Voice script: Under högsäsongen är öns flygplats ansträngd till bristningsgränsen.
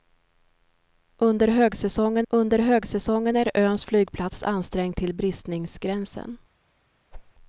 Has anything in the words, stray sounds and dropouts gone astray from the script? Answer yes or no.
yes